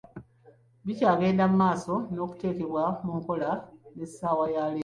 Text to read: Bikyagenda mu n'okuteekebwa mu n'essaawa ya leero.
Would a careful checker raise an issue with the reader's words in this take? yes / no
yes